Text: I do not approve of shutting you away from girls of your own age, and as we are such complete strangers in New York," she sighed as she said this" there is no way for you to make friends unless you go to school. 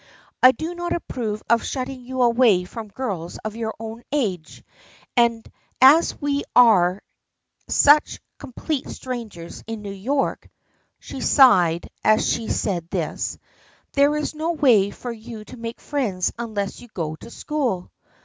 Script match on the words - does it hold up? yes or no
yes